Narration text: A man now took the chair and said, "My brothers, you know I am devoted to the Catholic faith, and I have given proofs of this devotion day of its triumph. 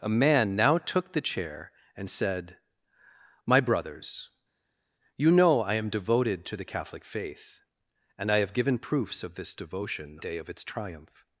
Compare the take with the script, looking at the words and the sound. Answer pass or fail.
pass